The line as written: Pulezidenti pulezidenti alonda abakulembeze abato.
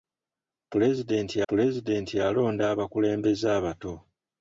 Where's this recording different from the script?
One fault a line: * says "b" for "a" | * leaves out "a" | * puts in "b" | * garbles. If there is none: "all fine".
all fine